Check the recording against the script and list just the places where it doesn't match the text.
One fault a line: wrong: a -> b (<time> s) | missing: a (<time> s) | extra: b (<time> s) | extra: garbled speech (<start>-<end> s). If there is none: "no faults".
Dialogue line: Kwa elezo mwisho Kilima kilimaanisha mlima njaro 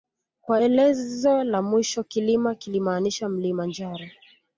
extra: la (1.4 s)